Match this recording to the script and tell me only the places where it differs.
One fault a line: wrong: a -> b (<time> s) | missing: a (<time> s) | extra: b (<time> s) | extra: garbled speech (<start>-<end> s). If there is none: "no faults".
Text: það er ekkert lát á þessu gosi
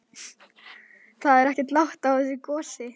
no faults